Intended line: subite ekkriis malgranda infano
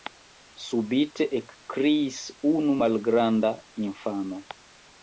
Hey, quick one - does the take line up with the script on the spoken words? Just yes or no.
no